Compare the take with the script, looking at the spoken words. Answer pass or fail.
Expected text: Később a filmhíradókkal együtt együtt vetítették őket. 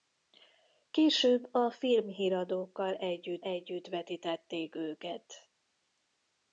pass